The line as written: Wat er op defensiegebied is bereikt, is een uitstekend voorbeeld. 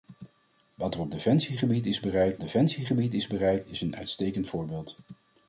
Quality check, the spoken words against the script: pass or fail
fail